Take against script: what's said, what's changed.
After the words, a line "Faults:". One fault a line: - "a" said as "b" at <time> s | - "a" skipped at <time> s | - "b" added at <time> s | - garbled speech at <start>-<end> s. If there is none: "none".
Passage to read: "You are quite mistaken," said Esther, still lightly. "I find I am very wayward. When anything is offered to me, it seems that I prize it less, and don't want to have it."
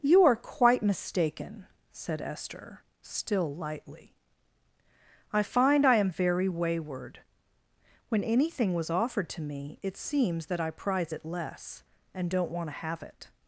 "You are quite mistaken," said Esther, still lightly. "I find I am very wayward. When anything was offered to me, it seems that I prize it less, and don't want to have it."
Faults:
- "is" said as "was" at 8.7 s